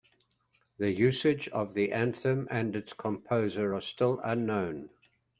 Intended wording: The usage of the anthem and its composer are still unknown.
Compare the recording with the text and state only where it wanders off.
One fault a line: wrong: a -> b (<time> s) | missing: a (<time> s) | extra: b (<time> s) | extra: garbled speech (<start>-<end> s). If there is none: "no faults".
no faults